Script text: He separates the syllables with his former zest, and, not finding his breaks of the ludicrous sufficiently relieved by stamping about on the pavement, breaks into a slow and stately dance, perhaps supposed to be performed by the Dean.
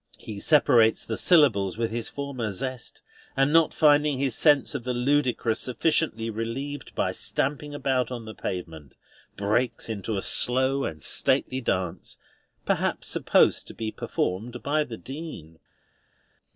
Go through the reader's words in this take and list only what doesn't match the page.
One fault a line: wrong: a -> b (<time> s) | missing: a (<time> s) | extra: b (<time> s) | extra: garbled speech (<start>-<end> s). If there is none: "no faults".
wrong: breaks -> sense (4.3 s)